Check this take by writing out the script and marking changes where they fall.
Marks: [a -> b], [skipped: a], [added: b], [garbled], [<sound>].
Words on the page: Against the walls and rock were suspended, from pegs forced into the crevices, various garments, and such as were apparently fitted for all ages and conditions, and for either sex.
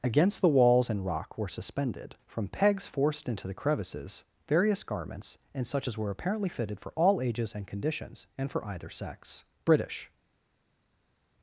Against the walls and rock were suspended, from pegs forced into the crevices, various garments, and such as were apparently fitted for all ages and conditions, and for either sex. [added: British]